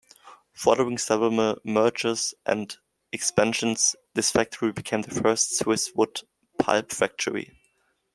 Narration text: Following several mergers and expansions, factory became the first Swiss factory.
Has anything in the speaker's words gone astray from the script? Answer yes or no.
yes